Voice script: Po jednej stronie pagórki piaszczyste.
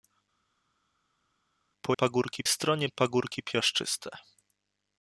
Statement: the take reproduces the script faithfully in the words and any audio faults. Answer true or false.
false